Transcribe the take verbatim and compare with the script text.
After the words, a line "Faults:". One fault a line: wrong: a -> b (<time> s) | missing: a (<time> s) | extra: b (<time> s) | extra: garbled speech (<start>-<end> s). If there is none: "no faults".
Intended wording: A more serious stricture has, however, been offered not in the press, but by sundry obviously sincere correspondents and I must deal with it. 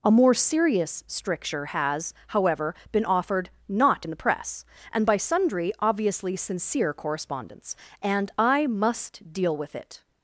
A more serious stricture has, however, been offered not in the press, and by sundry obviously sincere correspondents and I must deal with it.
Faults:
wrong: but -> and (4.9 s)